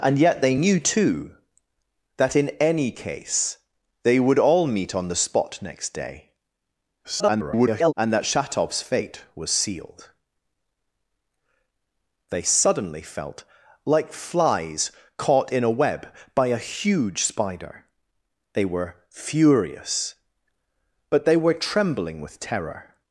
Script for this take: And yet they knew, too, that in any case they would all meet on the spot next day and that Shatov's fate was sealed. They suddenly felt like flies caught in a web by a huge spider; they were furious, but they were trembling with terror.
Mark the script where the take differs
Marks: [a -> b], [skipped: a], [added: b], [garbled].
And yet they knew, too, that in any case they would all meet on the spot next day [garbled] and that Shatov's fate was sealed. They suddenly felt like flies caught in a web by a huge spider; they were furious, but they were trembling with terror.